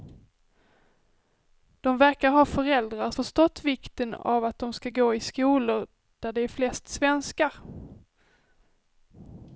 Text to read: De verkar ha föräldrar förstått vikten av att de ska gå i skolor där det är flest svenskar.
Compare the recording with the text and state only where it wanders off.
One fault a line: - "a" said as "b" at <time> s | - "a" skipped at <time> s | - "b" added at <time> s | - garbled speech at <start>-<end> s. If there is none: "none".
none